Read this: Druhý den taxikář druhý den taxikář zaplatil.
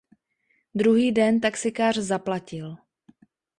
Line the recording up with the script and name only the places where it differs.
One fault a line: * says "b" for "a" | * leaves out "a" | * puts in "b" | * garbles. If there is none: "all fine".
* leaves out "druhý den taxikář"